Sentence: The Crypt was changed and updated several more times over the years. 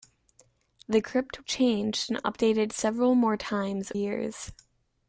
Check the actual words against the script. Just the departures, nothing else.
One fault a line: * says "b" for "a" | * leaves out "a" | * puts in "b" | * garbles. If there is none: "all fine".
* leaves out "was"
* leaves out "over the"